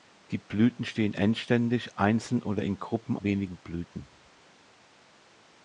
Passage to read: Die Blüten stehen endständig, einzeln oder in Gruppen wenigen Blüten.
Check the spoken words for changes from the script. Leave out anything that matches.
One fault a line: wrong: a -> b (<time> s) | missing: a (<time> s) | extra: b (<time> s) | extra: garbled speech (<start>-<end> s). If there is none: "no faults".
no faults